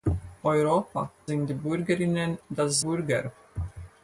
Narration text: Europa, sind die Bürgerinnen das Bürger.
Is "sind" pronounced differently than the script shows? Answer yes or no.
no